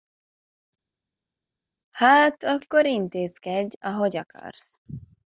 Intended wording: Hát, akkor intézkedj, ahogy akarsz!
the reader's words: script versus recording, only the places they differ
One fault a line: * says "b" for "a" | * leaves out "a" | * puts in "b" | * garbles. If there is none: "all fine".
all fine